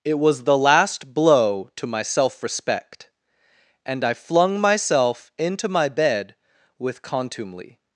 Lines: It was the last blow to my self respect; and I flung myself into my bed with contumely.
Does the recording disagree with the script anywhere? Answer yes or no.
no